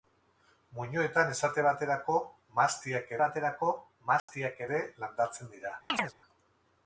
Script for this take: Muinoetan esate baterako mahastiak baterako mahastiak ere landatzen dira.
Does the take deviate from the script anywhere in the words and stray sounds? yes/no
yes